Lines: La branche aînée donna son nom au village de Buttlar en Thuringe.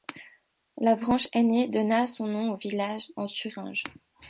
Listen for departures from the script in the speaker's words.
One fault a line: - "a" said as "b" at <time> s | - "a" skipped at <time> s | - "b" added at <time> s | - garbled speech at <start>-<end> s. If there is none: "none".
- "de Buttlar" skipped at 3.1 s